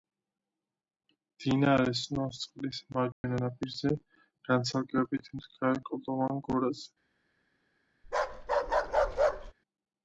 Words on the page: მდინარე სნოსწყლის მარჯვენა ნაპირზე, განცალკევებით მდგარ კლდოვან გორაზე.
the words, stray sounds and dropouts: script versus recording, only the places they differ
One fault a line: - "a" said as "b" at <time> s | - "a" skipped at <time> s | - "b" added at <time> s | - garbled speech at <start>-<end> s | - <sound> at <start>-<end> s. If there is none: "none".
- dropout at 3.1-3.2 s
- bark at 8.0-9.5 s